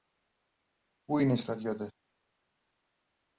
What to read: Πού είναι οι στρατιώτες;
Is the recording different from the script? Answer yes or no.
no